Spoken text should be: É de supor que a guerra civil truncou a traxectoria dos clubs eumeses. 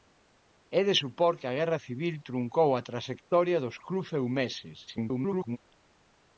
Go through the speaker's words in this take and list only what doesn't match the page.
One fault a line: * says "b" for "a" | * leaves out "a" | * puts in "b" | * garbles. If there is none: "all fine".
* garbles